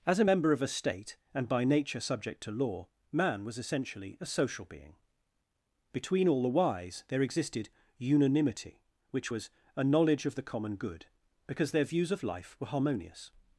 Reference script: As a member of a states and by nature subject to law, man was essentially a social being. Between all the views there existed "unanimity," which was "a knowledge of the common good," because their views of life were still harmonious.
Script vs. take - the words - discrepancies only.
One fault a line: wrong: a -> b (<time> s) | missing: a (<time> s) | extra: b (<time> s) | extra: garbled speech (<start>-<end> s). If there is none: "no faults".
wrong: states -> state (0.7 s)
wrong: views -> wise (6.5 s)
missing: still (12.7 s)